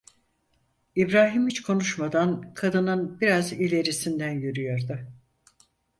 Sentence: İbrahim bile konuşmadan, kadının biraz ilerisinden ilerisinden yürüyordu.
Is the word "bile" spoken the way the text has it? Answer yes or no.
no